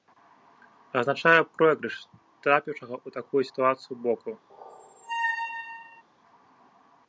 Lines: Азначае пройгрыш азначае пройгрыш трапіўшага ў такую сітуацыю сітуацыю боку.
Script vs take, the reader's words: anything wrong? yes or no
yes